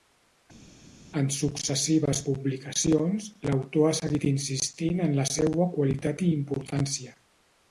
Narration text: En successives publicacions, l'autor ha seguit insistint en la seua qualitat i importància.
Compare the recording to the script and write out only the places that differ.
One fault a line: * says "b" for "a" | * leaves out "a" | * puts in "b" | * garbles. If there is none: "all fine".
all fine